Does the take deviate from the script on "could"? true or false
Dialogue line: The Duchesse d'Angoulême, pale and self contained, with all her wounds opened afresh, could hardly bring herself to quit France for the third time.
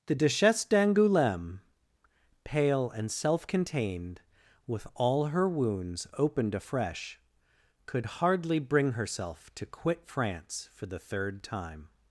false